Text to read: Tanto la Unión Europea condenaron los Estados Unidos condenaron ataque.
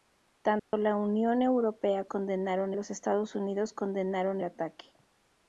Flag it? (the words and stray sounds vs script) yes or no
yes